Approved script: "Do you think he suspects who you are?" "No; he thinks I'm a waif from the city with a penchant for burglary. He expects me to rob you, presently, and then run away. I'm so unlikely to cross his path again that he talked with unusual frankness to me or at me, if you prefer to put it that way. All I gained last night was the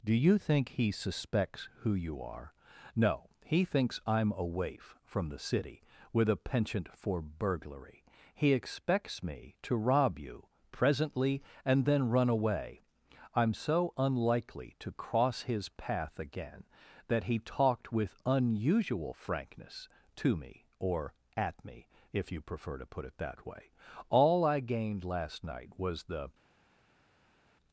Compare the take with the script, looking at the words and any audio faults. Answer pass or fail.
pass